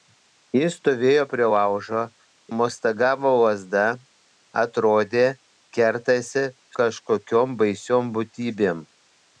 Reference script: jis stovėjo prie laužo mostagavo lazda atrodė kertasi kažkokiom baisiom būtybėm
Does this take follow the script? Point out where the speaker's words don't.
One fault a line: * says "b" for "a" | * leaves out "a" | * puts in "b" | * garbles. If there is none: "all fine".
all fine